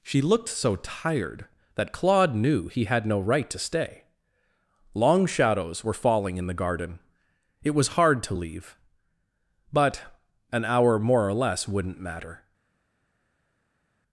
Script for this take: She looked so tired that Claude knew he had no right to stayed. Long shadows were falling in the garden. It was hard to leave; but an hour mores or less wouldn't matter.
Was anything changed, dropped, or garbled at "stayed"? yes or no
yes